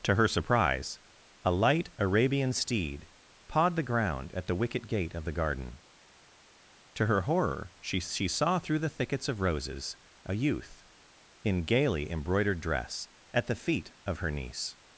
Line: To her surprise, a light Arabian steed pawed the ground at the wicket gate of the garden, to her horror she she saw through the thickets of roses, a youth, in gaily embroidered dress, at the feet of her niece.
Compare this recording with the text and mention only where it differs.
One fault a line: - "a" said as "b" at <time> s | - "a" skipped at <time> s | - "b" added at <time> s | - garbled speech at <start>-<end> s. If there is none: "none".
none